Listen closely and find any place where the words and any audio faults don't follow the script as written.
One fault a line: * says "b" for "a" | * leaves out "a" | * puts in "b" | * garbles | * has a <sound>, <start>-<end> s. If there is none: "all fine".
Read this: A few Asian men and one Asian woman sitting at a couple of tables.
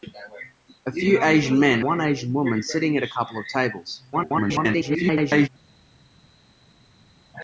* leaves out "and"
* garbles